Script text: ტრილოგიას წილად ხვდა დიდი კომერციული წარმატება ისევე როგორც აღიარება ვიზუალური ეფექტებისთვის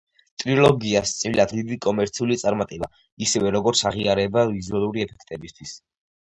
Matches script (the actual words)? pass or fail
fail